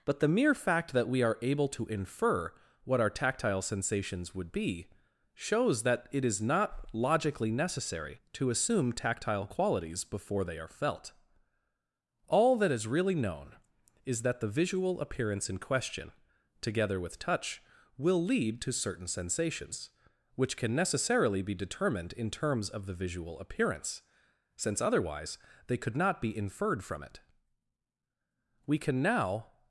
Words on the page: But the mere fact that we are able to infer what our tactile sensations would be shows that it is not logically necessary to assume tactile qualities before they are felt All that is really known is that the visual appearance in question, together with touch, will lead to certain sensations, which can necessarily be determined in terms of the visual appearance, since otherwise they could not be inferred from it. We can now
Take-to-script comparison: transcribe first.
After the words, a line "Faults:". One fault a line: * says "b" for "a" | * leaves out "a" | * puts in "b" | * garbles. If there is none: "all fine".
But the mere fact that we are able to infer what our tactile sensations would be shows that it is not logically necessary to assume tactile qualities before they are felt All that is really known is that the visual appearance in question, together with touch, will lead to certain sensations, which can necessarily be determined in terms of the visual appearance, since otherwise they could not be inferred from it. We can now
Faults:
all fine